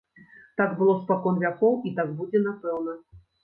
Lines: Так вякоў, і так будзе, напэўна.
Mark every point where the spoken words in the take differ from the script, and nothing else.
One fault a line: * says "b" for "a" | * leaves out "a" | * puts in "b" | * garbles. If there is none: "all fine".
* puts in "было спакон"